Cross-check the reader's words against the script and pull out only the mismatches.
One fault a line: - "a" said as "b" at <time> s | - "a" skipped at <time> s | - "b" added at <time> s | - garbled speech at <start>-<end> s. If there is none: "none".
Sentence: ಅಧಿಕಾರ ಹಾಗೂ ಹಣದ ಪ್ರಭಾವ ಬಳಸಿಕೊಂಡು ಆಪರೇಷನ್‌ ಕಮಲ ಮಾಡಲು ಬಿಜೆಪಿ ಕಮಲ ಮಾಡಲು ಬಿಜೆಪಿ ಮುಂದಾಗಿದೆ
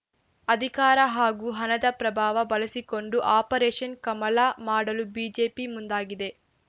- "ಕಮಲ ಮಾಡಲು ಬಿಜೆಪಿ" skipped at 5.7 s